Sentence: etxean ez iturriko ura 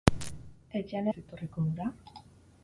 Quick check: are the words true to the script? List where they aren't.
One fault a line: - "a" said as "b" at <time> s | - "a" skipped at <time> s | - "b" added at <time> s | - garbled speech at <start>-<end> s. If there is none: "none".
none